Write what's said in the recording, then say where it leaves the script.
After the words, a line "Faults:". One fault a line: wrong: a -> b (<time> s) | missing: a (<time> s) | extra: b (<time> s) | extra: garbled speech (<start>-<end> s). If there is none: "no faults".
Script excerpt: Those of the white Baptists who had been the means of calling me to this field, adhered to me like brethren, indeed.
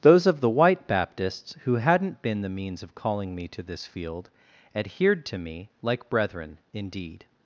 Those of the white Baptists who hadn't been the means of calling me to this field, adhered to me like brethren, indeed.
Faults:
wrong: had -> hadn't (1.8 s)